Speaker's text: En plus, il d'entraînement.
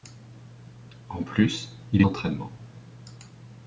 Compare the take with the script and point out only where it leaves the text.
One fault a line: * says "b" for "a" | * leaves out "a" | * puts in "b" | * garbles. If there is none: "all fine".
all fine